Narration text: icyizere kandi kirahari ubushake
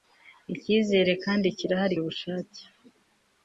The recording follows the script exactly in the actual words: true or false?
true